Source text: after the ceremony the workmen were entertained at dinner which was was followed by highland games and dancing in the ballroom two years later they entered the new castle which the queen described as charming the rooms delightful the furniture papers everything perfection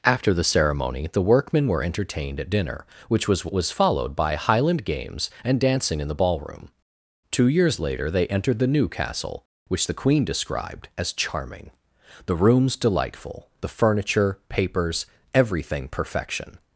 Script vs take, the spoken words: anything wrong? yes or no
no